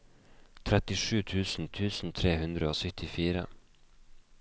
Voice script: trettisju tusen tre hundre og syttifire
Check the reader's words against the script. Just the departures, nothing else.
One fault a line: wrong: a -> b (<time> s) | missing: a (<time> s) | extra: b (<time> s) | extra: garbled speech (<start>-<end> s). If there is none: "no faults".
extra: tusen (1.8 s)